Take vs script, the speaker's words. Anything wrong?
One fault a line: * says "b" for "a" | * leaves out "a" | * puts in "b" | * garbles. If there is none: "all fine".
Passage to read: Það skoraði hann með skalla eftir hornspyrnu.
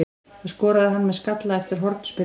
all fine